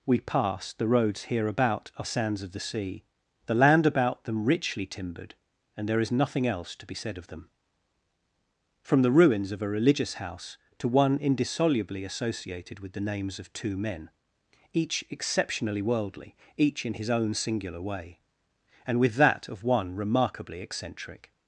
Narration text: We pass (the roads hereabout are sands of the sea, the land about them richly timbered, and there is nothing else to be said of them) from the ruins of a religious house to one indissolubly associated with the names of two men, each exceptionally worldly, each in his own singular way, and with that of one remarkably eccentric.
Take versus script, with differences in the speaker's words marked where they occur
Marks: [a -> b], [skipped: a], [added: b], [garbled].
We pass (the roads hereabout are sands of the sea, the land about them richly timbered, and there is nothing else to be said of them) from the ruins of a religious house to one indissolubly associated with the names of two men, each exceptionally worldly, each in his own singular way, and with that of one remarkably eccentric.